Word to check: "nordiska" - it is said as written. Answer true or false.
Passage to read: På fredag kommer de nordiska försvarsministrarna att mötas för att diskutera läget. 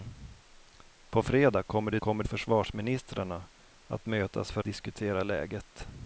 false